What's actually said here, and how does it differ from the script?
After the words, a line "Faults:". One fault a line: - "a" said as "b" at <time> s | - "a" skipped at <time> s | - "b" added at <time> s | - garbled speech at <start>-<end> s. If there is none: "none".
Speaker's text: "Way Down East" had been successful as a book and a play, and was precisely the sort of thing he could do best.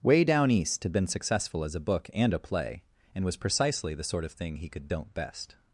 "Way Down East" had been successful as a book and a play, and was precisely the sort of thing he could don't best.
Faults:
- "do" said as "don't" at 4.9 s